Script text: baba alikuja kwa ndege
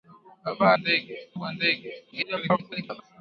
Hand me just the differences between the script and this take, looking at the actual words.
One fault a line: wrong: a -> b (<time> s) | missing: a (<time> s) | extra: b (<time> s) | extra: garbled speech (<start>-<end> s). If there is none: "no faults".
wrong: alikuja -> ndege (0.8 s)
extra: garbled speech (2.1-3.0 s)